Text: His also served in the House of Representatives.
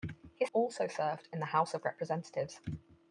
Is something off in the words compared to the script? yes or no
no